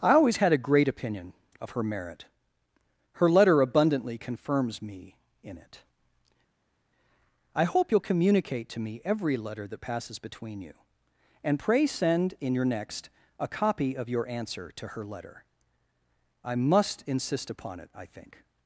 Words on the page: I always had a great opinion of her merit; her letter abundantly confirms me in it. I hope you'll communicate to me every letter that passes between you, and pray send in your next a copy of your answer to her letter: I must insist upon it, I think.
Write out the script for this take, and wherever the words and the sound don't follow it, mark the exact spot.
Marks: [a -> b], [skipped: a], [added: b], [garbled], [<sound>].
I always had a great opinion of her merit; her letter abundantly confirms me in it. I hope you'll communicate to me every letter that passes between you, and pray send in your next a copy of your answer to her letter: I must insist upon it, I think.